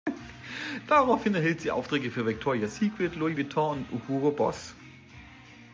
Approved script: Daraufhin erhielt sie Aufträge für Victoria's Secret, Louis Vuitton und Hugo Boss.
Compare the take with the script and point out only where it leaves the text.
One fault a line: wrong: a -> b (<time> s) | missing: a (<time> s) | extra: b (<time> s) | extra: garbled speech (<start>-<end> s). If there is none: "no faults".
no faults